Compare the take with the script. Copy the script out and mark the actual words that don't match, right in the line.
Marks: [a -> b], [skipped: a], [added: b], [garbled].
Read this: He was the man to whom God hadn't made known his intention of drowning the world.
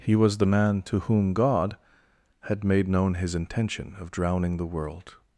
He was the man to whom God [hadn't -> had] made known his intention of drowning the world.